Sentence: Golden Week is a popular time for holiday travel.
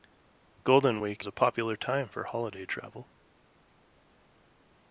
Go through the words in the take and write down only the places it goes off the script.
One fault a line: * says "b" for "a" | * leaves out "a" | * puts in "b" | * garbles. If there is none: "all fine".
* leaves out "is"